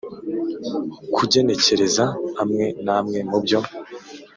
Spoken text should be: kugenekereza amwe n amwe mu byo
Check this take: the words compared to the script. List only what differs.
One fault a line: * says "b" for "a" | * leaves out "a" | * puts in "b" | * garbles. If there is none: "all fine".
all fine